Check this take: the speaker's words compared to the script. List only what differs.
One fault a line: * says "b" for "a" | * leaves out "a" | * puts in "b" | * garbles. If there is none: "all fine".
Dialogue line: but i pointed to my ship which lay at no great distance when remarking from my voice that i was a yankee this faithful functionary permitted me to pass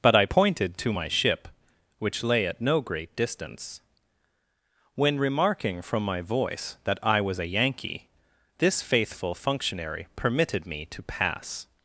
all fine